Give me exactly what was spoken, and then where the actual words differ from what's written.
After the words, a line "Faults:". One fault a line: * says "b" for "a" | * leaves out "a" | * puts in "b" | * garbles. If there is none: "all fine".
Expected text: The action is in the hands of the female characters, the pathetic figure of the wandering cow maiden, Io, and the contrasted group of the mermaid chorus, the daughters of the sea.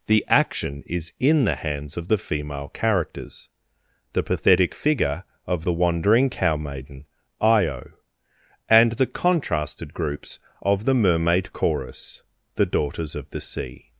The action is in the hands of the female characters, the pathetic figure of the wandering cow maiden, Io, and the contrasted groups of the mermaid chorus, the daughters of the sea.
Faults:
* says "groups" for "group"